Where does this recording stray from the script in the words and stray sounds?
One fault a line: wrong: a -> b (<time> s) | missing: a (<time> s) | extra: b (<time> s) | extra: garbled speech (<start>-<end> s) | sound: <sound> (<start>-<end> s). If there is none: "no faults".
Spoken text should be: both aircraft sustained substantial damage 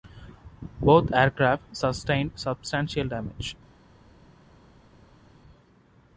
no faults